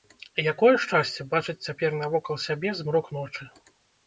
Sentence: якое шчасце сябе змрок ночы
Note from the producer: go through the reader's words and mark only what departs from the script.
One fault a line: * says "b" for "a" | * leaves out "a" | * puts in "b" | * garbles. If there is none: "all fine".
* puts in "бачыць цяпер навокал"